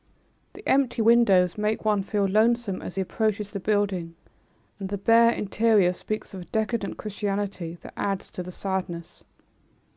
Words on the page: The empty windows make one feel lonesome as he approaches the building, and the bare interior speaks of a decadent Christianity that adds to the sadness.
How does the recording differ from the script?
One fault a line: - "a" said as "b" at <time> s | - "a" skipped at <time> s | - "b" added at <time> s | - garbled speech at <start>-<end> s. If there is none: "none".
none